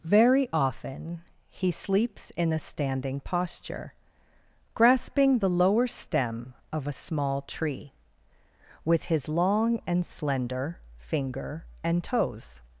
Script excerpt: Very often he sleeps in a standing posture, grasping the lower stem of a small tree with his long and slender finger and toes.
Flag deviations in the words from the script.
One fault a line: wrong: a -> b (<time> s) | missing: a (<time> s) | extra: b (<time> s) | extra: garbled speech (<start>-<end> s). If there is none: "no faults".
no faults